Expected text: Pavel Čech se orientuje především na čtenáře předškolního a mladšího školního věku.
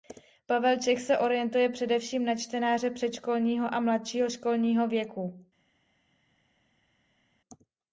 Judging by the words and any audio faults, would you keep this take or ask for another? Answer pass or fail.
pass